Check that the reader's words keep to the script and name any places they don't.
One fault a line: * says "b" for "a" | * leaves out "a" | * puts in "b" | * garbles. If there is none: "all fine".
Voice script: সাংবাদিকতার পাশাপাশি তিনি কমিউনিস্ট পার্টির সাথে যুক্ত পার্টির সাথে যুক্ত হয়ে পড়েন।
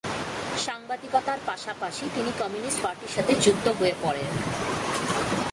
* leaves out "পার্টির সাথে যুক্ত"